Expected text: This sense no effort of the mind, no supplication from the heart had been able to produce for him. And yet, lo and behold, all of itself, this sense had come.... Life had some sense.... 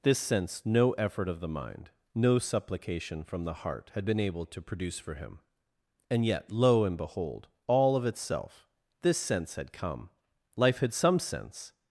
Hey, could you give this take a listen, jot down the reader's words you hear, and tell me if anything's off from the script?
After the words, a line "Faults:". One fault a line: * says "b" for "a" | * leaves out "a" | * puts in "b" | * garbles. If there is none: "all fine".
This sense no effort of the mind, no supplication from the heart had been able to produce for him. And yet, lo and behold, all of itself, this sense had come.... Life had some sense....
Faults:
all fine